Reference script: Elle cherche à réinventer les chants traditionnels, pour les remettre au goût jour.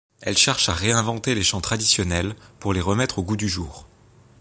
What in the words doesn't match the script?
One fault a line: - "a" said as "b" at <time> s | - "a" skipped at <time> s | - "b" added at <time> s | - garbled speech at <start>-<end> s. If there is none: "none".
- "du" added at 3.4 s